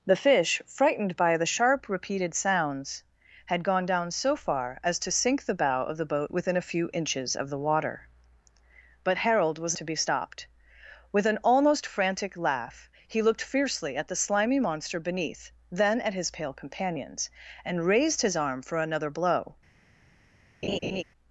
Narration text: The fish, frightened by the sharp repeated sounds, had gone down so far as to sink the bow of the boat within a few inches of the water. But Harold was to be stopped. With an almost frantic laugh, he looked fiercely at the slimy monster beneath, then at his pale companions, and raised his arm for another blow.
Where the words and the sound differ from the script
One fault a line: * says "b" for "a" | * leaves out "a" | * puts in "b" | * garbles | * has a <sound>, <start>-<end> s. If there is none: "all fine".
* has a laugh, 20.6-21.0 s